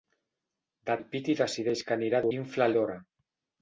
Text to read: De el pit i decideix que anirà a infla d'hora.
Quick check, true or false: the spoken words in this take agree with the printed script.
true